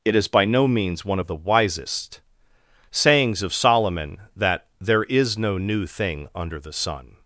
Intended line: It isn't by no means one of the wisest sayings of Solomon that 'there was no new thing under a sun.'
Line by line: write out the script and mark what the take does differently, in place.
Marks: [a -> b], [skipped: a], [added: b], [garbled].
It [isn't -> is] by no means one of the wisest sayings of Solomon that 'there [was -> is] no new thing under [a -> the] sun.'